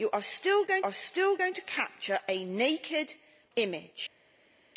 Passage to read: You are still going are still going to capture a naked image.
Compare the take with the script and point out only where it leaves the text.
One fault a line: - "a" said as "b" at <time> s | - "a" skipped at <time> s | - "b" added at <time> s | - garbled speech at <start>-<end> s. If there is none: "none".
none